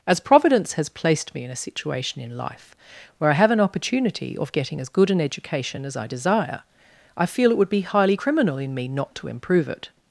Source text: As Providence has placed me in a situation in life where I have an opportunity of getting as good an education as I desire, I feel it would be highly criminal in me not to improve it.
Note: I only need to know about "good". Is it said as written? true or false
true